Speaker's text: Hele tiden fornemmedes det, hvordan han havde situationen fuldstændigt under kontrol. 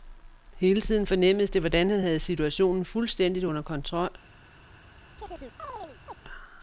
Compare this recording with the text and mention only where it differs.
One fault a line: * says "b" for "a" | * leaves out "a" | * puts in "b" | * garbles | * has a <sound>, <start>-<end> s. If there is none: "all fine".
* has a chirp, 5.2-6.2 s